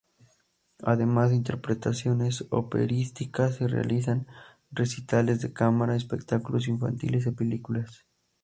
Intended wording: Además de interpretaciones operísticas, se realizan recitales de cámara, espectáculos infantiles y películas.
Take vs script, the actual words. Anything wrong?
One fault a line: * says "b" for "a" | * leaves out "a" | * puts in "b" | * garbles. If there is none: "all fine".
all fine